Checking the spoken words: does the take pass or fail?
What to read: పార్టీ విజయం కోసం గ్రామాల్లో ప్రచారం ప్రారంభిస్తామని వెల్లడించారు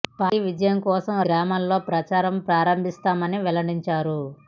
pass